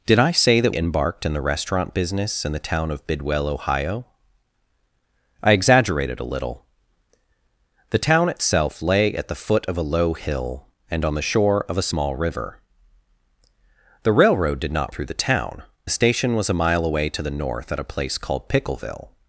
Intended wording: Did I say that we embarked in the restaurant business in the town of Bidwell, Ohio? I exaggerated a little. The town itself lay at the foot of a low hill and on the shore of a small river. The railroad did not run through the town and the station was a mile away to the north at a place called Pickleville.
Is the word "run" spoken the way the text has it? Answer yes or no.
no